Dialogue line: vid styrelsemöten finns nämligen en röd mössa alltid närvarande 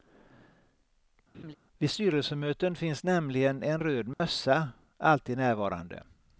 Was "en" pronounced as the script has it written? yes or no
yes